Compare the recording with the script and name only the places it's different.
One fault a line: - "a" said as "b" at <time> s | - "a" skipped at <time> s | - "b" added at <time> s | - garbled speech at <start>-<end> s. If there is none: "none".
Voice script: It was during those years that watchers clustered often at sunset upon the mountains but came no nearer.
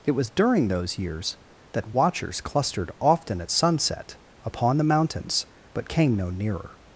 none